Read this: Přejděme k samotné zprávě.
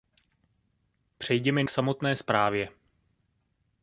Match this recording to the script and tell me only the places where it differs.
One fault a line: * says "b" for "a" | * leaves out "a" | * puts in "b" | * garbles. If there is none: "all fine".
all fine